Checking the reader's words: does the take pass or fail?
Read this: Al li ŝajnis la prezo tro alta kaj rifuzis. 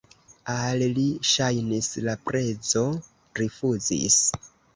fail